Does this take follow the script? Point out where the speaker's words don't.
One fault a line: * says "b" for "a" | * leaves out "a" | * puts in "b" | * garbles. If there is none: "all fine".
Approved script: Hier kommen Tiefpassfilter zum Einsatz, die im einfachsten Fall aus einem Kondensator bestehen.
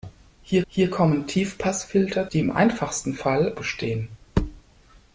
* puts in "hier"
* leaves out "zum Einsatz"
* leaves out "aus einem Kondensator"